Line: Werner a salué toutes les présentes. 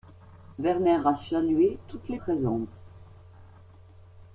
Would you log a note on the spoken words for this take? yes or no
no